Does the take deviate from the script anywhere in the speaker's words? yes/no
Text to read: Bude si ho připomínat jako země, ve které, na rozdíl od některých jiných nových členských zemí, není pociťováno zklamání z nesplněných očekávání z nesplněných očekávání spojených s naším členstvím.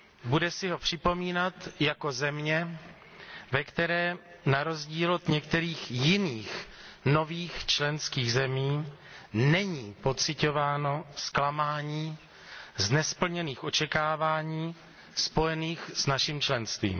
yes